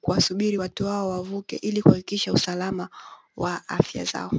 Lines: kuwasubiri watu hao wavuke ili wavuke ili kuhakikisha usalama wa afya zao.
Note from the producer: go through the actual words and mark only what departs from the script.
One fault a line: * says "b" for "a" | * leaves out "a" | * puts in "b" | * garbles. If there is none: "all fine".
* leaves out "wavuke ili"